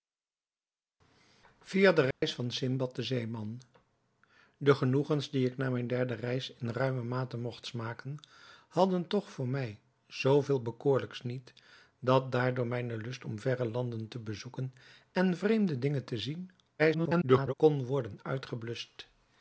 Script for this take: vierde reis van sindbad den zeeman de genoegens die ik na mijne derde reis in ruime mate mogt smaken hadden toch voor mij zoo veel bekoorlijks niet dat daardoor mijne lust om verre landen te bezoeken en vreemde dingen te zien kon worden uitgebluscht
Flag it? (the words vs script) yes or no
yes